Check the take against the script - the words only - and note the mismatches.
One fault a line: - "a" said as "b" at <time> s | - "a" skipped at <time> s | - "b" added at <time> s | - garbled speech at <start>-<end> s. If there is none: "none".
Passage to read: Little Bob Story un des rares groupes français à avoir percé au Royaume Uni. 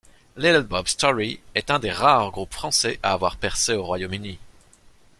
- "est" added at 1.5 s